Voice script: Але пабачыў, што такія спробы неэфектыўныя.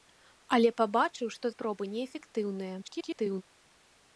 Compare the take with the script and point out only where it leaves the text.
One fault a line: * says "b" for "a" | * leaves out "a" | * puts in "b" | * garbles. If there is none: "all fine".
* leaves out "такія"
* garbles